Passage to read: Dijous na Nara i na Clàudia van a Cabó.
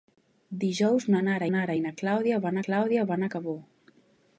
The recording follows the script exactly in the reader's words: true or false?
false